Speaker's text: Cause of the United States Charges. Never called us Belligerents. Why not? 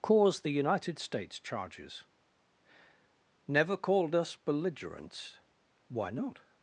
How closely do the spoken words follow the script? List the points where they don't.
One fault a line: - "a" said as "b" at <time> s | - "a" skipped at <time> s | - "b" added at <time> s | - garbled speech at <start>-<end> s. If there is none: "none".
- "of" skipped at 0.4 s